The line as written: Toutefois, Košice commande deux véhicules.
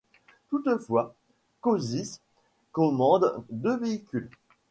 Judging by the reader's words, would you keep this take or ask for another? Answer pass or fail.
pass